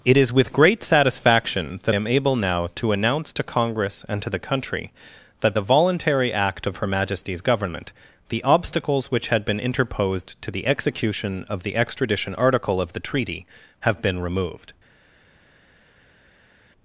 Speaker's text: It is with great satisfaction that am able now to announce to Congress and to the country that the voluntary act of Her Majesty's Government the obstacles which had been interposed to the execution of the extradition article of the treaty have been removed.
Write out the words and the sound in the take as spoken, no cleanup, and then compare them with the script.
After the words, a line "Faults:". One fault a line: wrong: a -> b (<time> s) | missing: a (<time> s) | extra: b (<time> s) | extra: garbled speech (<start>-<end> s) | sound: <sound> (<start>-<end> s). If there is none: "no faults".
It is with great satisfaction that am able now to announce to Congress and to the country that the voluntary act of Her Majesty's Government the obstacles which had been interposed to the execution of the extradition article of the treaty have been removed.
Faults:
no faults